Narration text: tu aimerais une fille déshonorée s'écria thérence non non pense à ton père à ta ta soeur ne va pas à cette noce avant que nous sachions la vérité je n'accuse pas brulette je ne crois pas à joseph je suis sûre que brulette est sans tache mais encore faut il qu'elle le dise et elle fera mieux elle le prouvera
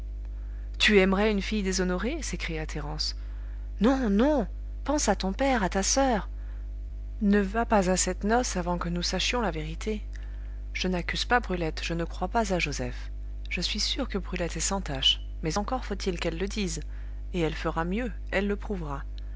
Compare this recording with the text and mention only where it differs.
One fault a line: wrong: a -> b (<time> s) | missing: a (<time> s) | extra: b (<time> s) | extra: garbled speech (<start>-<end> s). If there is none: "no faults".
missing: ta (5.8 s)